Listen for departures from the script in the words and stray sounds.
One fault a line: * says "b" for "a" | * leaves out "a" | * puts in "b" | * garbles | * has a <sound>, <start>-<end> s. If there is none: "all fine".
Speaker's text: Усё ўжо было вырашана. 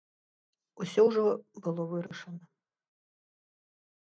* has a dropout, 2.1-2.1 s